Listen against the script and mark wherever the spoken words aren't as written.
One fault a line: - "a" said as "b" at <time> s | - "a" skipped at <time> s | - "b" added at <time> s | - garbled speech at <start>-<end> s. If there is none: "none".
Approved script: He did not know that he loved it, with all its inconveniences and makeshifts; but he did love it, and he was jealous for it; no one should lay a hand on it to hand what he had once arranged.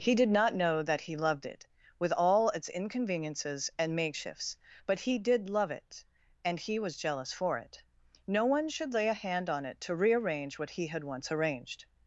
- "hand" said as "rearrange" at 10.0 s